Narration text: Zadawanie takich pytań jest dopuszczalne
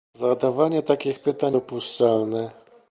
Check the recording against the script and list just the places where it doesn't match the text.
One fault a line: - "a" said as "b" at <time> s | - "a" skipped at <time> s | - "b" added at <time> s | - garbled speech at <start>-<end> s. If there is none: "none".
- "jest" skipped at 1.6 s